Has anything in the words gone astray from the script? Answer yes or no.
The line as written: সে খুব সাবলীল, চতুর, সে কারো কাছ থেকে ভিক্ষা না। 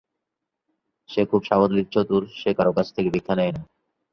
yes